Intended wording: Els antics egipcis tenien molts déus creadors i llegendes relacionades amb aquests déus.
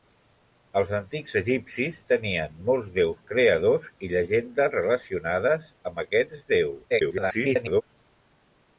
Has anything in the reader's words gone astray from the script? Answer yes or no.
yes